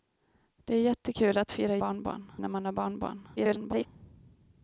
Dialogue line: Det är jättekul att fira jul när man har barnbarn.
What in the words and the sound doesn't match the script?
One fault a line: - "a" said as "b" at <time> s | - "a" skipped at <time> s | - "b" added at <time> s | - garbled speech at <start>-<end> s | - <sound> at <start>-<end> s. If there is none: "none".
- "jul" said as "barnbarn" at 1.8 s
- garbled speech at 3.4-3.9 s